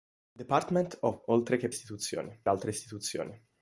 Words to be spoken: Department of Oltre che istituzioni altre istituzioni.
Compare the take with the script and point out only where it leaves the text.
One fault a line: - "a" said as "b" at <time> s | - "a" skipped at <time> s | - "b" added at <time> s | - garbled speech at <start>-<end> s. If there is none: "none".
none